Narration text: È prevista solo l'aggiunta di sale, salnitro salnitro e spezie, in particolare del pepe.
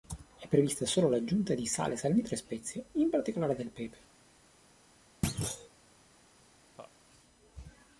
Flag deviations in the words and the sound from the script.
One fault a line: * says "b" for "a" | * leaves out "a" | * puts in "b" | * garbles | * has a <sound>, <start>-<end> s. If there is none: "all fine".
* leaves out "salnitro"
* has a thud, 5.2-5.7 s
* has a laugh, 6.7-6.9 s